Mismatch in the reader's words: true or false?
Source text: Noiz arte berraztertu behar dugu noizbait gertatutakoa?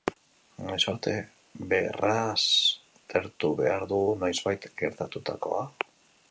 false